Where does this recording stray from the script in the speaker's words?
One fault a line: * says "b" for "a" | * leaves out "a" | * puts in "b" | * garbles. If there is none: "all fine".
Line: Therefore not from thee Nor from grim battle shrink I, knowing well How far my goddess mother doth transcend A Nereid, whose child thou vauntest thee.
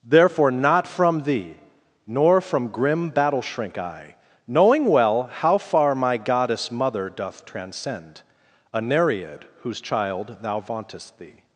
all fine